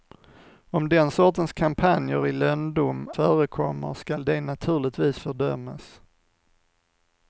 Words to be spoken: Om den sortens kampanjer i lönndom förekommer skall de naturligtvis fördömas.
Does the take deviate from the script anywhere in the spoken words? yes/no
no